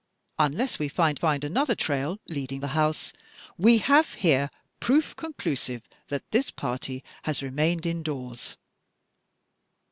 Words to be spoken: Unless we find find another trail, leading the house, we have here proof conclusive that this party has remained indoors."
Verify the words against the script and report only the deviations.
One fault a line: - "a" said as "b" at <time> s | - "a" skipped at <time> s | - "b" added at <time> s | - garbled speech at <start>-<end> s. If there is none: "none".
none